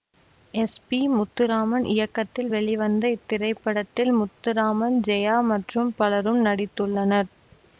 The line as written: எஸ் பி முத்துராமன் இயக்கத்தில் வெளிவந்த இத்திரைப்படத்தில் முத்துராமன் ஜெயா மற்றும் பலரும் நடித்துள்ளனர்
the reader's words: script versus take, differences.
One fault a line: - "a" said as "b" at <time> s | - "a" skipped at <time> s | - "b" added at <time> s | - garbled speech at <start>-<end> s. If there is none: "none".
none